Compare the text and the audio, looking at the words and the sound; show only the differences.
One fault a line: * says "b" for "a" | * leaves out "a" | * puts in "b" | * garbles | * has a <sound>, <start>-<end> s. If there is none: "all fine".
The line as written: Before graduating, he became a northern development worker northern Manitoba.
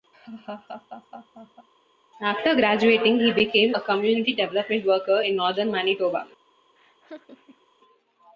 * has a laugh, 0.1-1.7 s
* says "After" for "Before"
* says "community" for "northern"
* puts in "in"
* has a laugh, 6.8-7.7 s